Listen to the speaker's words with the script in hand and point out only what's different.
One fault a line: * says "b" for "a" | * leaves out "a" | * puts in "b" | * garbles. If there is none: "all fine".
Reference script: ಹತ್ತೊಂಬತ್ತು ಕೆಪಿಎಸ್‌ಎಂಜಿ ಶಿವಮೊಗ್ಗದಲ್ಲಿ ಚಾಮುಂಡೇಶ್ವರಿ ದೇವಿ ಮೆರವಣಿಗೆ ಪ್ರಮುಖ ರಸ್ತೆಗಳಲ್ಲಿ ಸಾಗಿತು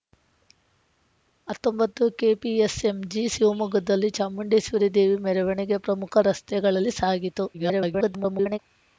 * garbles